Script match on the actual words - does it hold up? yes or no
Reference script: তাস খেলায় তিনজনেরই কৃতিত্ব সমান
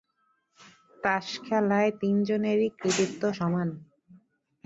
yes